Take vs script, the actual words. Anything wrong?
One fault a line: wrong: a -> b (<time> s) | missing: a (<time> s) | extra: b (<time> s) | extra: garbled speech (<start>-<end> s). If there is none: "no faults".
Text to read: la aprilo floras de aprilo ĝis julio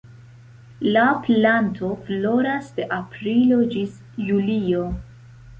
wrong: aprilo -> planto (1.3 s)